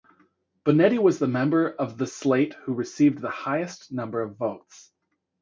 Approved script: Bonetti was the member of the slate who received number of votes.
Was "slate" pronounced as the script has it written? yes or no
yes